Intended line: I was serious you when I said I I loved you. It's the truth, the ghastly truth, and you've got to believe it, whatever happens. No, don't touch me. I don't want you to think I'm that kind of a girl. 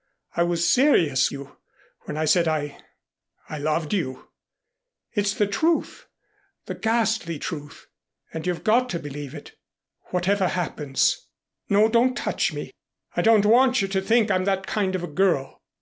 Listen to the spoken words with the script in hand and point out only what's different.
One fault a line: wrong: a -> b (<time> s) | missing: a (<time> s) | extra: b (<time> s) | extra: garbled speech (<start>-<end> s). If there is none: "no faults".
no faults